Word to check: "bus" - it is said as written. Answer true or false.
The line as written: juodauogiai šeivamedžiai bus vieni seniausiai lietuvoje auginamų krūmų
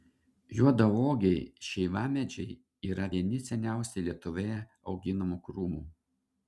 false